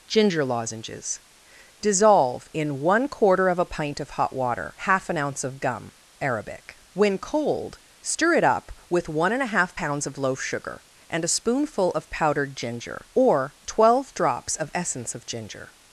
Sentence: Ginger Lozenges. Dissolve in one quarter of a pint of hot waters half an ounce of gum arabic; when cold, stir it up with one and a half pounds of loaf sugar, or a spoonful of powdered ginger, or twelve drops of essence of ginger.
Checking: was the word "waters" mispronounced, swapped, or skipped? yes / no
yes